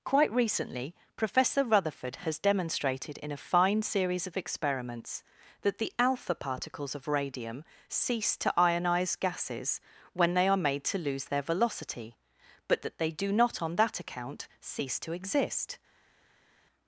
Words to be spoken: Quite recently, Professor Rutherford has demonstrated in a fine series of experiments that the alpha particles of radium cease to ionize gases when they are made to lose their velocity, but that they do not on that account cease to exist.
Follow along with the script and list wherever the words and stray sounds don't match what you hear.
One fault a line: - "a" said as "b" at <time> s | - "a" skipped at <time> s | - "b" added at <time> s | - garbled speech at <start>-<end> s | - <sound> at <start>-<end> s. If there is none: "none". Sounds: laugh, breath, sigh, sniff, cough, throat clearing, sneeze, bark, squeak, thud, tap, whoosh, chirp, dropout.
none